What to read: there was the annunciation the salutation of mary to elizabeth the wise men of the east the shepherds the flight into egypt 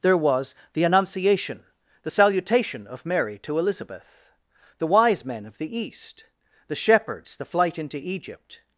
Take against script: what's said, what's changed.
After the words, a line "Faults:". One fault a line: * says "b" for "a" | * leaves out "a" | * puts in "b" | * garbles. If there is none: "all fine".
there was the annunciation the salutation of mary to elizabeth the wise men of the east the shepherds the flight into egypt
Faults:
all fine